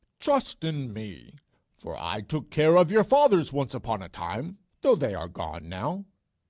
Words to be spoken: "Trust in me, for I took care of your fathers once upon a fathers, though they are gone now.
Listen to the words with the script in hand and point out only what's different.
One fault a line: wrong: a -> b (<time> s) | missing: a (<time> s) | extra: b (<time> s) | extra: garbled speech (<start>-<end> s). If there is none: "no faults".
wrong: fathers -> time (4.1 s)